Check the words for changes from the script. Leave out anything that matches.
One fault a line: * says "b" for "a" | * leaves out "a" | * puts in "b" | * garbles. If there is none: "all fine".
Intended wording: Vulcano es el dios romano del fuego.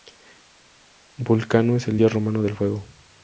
all fine